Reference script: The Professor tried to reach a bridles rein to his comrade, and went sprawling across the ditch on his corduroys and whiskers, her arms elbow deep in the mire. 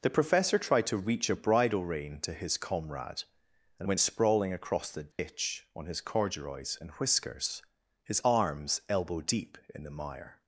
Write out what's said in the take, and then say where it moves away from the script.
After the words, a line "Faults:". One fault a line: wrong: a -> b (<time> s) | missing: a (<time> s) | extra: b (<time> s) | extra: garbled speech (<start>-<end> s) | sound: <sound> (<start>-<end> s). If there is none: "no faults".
The Professor tried to reach a bridle rein to his comrade, and went sprawling across the ditch on his corduroys and whiskers, his arms elbow deep in the mire.
Faults:
wrong: bridles -> bridle (1.4 s)
sound: dropout (5.1-5.2 s)
wrong: her -> his (8.0 s)